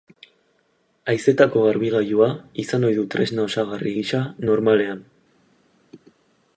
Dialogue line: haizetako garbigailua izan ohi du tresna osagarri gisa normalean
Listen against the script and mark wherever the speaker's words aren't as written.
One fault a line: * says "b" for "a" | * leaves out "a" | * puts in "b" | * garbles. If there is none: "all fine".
all fine